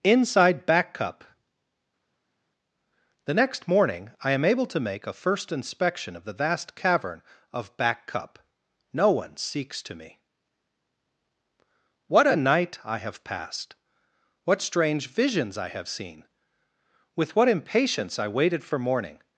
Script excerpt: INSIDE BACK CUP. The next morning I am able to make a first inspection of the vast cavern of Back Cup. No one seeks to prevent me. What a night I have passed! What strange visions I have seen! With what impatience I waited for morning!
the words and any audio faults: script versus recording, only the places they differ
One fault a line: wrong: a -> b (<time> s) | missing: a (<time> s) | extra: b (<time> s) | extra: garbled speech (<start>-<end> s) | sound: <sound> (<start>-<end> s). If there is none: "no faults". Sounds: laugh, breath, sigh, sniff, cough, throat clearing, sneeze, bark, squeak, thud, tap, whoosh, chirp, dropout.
missing: prevent (9.9 s)